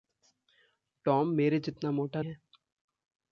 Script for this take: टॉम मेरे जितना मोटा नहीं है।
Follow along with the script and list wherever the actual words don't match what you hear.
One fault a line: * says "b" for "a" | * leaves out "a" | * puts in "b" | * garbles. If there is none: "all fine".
* leaves out "नहीं"